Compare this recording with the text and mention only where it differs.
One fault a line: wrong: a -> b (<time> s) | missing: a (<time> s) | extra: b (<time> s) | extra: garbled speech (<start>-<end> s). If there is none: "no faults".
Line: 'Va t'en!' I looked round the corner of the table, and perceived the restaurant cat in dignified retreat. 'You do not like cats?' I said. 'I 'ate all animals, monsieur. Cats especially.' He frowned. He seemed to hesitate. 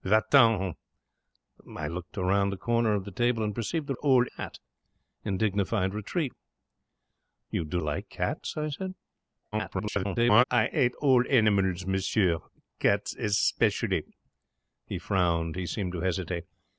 wrong: restaurant -> all (4.0 s)
missing: not (7.8 s)
extra: garbled speech (9.5-10.4 s)